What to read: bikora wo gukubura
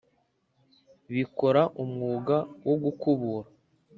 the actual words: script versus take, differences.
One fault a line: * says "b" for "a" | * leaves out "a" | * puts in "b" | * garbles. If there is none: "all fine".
* puts in "umwuga"